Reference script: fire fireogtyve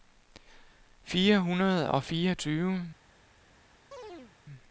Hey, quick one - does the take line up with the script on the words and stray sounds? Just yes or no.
no